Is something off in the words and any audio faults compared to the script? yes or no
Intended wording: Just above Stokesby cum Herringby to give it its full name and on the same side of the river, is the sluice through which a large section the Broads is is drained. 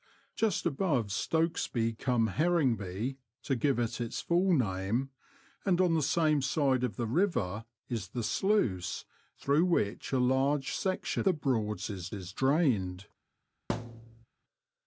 yes